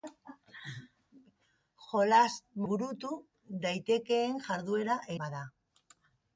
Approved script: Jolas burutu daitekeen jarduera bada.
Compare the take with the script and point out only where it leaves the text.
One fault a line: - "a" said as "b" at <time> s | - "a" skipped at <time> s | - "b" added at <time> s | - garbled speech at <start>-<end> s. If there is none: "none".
none